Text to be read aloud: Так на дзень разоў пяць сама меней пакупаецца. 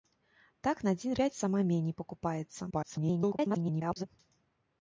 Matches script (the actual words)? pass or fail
fail